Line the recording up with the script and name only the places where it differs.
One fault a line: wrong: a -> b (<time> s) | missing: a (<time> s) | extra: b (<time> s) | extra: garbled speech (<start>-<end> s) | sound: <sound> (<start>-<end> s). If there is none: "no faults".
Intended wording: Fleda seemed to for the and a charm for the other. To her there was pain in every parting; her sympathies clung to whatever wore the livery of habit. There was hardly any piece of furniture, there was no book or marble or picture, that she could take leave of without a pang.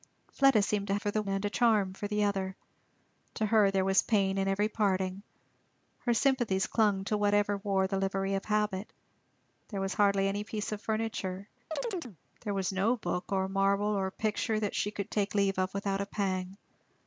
sound: chirp (11.7-12.2 s)